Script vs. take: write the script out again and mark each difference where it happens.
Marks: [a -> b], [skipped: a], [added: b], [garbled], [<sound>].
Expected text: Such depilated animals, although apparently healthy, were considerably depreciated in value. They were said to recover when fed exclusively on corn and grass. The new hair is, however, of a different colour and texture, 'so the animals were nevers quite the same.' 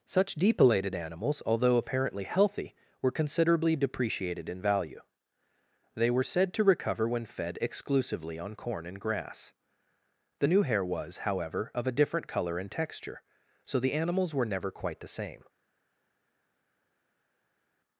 Such depilated animals, although apparently healthy, were considerably depreciated in value. They were said to recover when fed exclusively on corn and grass. The new hair [is, -> was] however, of a different colour and texture, 'so the animals were [nevers -> never] quite the same.'